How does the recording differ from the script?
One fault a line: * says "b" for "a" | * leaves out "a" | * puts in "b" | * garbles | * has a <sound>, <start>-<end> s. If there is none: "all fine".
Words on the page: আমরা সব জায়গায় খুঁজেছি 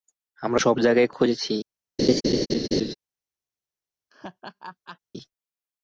* has a laugh, 2.0-2.9 s
* has a laugh, 4.1-5.0 s